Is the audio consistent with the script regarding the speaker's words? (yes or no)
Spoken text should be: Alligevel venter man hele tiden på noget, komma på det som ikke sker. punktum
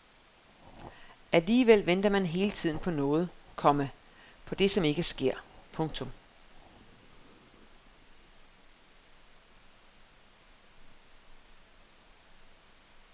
yes